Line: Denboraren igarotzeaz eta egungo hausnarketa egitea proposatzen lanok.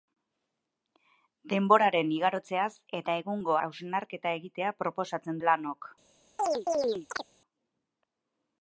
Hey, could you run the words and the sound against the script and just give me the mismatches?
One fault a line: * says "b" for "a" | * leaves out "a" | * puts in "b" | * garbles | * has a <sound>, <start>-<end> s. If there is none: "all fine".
* has a chirp, 6.4-7.3 s